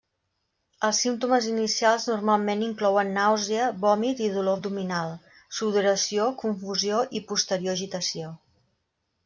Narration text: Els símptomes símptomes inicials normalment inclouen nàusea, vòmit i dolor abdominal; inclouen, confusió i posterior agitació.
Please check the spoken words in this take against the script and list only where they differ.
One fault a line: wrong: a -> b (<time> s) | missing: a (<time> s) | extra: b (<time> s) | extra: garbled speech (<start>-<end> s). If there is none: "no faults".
missing: símptomes (1.5 s)
wrong: inclouen -> sudoració (5.6 s)